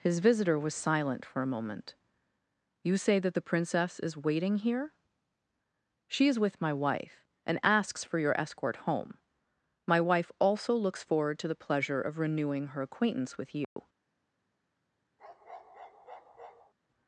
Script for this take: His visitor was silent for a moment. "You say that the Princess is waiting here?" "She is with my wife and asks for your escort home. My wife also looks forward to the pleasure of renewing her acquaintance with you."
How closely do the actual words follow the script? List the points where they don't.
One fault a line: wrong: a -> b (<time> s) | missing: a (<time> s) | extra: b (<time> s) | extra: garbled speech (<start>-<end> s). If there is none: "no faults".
no faults